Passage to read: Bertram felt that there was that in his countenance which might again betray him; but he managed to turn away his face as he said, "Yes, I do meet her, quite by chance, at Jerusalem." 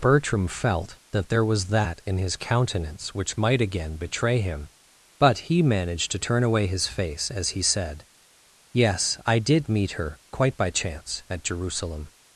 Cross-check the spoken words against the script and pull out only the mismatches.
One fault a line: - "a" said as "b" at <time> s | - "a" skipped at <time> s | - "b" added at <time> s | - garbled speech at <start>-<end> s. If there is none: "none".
- "do" said as "did" at 9.4 s